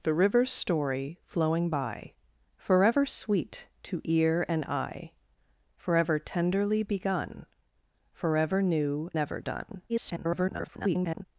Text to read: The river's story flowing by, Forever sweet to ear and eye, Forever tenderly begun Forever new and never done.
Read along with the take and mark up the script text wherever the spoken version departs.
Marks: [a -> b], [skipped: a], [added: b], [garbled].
The river's story flowing by, Forever sweet to ear and eye, Forever tenderly begun Forever new [skipped: and] never done. [garbled]